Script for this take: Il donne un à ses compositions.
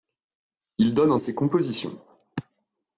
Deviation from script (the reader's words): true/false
false